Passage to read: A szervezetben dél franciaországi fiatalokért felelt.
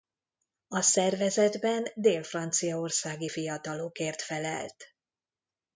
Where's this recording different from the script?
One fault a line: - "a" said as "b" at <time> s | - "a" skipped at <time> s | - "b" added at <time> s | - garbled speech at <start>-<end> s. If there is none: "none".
none